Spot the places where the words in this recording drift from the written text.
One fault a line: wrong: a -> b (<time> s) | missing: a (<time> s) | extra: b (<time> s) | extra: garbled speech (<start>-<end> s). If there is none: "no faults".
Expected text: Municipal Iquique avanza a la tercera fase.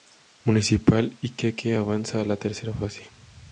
no faults